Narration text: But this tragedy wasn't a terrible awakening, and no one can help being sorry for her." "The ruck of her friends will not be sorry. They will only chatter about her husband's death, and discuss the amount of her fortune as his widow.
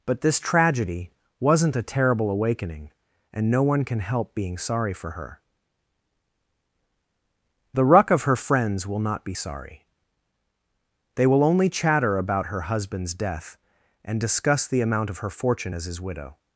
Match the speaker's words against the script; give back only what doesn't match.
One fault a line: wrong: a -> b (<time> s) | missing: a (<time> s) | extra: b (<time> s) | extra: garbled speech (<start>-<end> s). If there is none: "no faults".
no faults